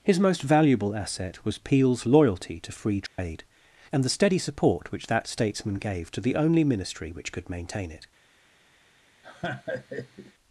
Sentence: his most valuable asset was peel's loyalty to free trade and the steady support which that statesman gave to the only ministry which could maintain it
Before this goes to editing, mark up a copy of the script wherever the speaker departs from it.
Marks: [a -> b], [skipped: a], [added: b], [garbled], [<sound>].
his most valuable asset was peel's loyalty to free trade [dropout] and the steady support which that statesman gave to the only ministry which could maintain it [laugh]